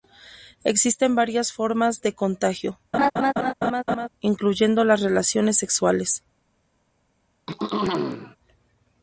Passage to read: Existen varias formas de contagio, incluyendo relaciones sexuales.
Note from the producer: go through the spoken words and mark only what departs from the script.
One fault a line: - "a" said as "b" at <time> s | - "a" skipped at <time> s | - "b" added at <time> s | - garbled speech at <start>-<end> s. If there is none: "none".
- "las" added at 4.9 s